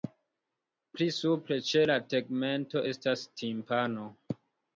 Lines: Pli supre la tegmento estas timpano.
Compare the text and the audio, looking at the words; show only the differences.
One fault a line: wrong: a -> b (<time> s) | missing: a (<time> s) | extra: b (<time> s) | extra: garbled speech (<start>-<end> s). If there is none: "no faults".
extra: ĉe (1.7 s)